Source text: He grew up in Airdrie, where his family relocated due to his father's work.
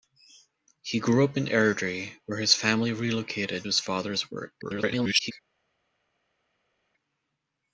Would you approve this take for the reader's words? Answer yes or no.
no